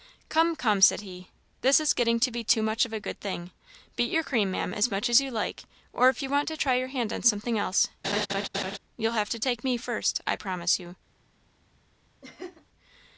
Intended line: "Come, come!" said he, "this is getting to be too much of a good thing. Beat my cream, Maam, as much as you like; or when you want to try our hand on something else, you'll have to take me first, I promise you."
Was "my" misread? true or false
true